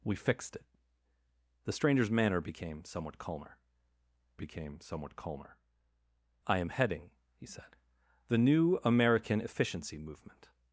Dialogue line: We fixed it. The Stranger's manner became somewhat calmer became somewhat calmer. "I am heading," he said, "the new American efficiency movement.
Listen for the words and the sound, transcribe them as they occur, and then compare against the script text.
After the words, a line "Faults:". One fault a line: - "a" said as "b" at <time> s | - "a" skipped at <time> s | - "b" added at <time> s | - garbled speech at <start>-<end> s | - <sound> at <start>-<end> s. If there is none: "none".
We fixed it. The Stranger's manner became somewhat calmer became somewhat calmer. "I am heading," he said, "the new American efficiency movement.
Faults:
none